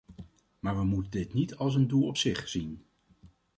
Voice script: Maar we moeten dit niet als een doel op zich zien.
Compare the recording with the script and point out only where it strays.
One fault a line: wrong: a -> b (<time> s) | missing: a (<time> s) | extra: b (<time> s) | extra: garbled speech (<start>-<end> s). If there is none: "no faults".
no faults